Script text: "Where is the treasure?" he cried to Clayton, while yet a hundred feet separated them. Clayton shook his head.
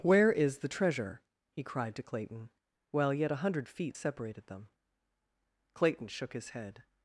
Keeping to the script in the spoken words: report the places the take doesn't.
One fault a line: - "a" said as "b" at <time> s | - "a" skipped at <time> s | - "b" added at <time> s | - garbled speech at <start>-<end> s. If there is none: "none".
none